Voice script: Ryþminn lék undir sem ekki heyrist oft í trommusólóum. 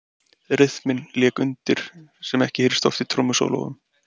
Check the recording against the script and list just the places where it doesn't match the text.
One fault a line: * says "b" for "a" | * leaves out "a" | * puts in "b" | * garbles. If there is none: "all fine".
all fine